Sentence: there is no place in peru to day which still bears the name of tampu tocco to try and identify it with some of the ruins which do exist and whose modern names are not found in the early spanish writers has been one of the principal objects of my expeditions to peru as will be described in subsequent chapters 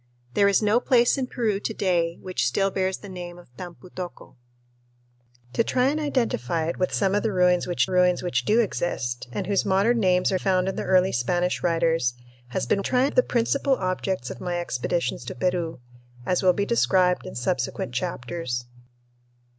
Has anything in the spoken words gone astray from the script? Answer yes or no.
yes